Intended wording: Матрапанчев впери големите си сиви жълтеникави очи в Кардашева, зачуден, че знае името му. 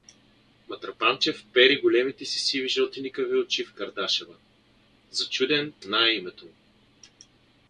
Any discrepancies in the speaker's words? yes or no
yes